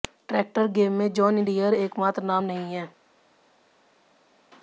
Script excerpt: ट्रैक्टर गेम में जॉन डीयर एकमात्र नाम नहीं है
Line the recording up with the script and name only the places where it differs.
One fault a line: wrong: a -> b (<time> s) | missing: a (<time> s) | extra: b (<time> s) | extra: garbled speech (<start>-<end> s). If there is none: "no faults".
no faults